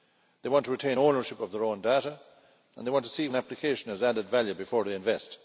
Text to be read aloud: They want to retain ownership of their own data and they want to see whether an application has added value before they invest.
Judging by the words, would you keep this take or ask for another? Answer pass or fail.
fail